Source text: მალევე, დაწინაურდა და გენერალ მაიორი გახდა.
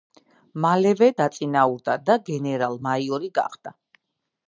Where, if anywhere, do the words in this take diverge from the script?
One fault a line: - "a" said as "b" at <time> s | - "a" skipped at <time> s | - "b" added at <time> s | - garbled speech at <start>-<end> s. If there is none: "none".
none